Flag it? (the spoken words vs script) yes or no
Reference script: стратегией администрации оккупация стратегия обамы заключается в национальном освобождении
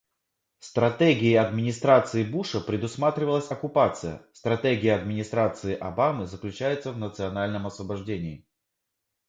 yes